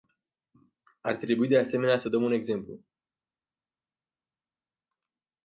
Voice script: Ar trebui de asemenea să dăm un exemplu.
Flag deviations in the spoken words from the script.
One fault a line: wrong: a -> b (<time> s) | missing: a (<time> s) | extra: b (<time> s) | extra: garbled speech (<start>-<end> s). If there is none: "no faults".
no faults